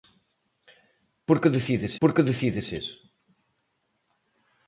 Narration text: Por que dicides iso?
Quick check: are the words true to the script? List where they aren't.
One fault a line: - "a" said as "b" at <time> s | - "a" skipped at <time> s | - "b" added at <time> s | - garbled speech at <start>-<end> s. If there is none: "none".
- "por que dicides" added at 2.0 s